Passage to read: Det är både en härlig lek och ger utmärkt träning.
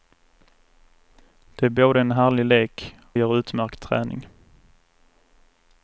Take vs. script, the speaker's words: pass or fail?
fail